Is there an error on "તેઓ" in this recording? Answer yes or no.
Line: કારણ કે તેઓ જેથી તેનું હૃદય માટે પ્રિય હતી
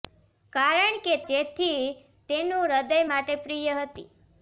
yes